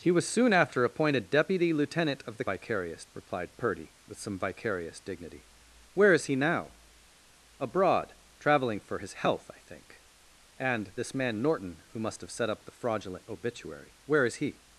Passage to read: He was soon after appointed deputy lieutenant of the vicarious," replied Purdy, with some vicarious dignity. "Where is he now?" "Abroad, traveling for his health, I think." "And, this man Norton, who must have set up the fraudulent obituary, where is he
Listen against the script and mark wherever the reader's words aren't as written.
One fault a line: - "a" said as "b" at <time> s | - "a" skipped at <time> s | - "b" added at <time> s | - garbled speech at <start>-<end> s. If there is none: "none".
none